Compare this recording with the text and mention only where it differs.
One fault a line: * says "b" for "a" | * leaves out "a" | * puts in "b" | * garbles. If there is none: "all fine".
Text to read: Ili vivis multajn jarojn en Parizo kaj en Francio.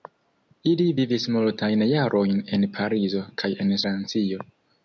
all fine